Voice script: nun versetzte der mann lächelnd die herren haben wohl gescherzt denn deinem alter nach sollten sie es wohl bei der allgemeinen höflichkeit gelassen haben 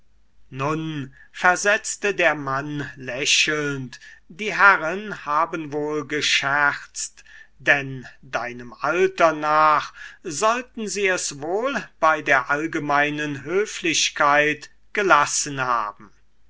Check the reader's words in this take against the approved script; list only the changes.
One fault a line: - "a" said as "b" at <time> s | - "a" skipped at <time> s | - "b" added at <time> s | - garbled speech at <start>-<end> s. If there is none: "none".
none